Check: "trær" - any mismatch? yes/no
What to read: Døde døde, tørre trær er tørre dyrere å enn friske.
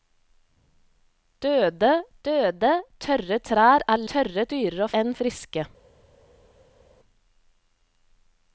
no